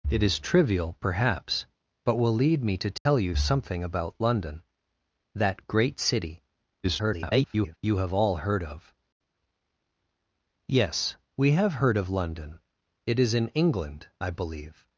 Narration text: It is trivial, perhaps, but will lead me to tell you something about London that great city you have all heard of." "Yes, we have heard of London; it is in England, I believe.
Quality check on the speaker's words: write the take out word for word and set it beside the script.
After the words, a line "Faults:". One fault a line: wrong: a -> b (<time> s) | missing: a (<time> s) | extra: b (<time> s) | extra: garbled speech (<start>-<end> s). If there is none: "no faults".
It is trivial, perhaps, but will lead me to tell you something about London that great city [garbled] you have all heard of." "Yes, we have heard of London; it is in England, I believe.
Faults:
extra: garbled speech (6.8-7.8 s)